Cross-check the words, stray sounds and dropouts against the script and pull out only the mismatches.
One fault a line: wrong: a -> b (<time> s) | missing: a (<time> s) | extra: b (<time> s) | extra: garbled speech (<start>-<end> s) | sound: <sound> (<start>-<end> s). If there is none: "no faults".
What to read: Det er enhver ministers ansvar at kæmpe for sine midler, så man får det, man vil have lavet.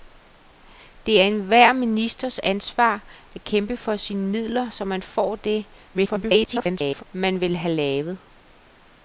extra: garbled speech (5.9-7.0 s)